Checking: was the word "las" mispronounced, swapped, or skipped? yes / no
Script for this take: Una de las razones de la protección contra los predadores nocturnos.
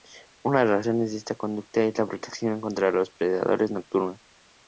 no